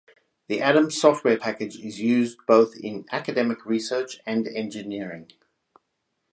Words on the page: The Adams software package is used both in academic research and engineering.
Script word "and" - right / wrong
right